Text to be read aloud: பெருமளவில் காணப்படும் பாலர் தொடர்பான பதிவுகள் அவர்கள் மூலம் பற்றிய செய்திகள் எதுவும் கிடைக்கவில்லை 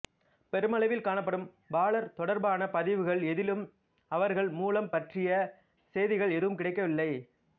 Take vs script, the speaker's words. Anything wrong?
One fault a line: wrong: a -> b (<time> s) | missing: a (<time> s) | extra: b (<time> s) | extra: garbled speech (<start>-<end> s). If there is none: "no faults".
extra: எதிலும் (3.2 s)